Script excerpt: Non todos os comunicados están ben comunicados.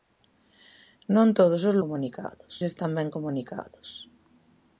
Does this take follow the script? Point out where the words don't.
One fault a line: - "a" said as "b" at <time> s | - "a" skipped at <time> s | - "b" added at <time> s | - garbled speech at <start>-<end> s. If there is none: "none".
none